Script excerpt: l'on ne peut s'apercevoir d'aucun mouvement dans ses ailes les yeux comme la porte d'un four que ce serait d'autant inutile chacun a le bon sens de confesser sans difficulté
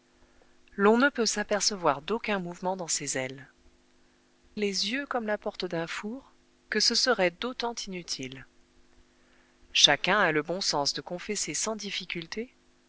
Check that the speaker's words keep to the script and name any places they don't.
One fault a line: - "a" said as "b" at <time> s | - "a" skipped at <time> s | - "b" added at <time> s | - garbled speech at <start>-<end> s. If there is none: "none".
none